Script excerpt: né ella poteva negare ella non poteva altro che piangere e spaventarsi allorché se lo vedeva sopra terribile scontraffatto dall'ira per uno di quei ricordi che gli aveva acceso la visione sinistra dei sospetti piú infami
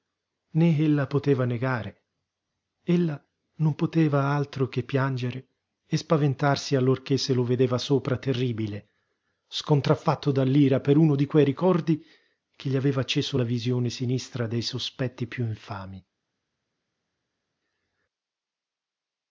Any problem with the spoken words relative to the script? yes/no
no